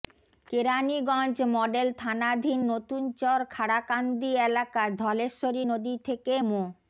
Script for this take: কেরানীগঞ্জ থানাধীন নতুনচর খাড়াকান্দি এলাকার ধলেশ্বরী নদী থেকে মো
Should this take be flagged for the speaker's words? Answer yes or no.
yes